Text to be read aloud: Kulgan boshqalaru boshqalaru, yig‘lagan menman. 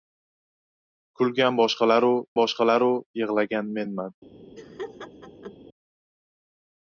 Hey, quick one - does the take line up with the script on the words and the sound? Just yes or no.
no